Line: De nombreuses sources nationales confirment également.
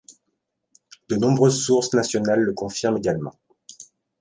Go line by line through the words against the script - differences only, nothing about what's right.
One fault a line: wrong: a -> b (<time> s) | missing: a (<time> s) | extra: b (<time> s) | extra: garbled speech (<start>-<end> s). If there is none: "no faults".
extra: le (2.4 s)